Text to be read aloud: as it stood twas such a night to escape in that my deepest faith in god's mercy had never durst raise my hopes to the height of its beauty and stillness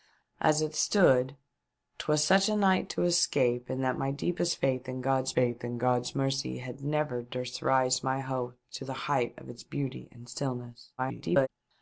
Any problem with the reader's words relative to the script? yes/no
yes